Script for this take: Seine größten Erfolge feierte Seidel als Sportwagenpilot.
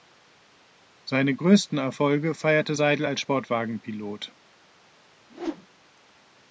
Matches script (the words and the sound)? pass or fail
fail